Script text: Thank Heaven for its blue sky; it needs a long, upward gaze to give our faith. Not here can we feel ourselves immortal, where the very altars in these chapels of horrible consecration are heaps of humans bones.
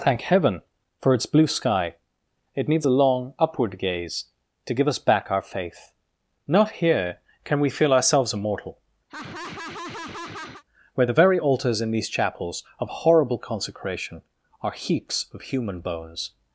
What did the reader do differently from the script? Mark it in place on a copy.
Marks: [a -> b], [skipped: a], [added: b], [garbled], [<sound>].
Thank Heaven for its blue sky; it needs a long, upward gaze to give [added: us back] our faith. Not here can we feel ourselves immortal, [laugh] where the very altars in these chapels of horrible consecration are heaps of [humans -> human] bones.